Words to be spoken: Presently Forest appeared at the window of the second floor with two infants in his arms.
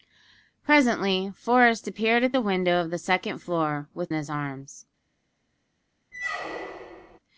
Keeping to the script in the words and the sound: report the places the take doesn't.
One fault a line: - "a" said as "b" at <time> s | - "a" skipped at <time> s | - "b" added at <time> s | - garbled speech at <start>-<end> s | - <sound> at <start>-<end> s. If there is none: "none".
- "two infants in" skipped at 4.1 s
- squeak at 6.1-7.2 s